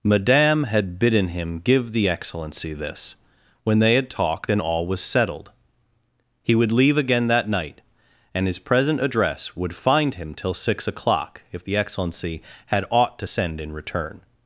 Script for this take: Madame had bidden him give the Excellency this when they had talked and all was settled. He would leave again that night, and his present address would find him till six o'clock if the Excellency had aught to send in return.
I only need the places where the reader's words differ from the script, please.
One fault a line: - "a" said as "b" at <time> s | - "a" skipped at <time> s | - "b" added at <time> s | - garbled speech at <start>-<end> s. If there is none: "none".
none